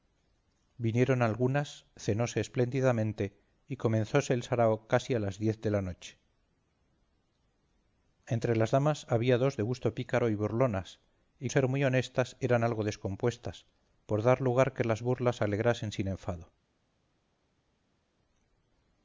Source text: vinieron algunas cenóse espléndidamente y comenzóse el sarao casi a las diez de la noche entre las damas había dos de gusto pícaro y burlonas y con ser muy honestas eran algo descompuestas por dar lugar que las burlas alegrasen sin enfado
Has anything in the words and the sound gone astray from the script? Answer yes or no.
yes